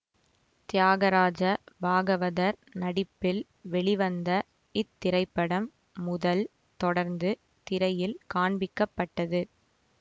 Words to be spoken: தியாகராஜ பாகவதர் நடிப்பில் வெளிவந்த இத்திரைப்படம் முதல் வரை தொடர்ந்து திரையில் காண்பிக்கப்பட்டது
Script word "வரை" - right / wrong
wrong